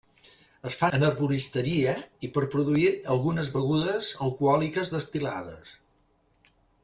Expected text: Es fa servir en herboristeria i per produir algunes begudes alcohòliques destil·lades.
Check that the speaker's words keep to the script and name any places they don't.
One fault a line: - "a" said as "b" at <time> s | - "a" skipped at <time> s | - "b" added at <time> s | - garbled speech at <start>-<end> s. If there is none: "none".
- "servir" skipped at 0.9 s